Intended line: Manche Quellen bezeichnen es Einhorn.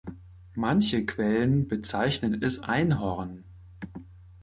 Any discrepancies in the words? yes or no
no